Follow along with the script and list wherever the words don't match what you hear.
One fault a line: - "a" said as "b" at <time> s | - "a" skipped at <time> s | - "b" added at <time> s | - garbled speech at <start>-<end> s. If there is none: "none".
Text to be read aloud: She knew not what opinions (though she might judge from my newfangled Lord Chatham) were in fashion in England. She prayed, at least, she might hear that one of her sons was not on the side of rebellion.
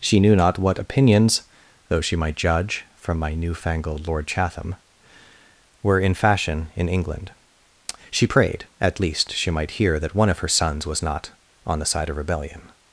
none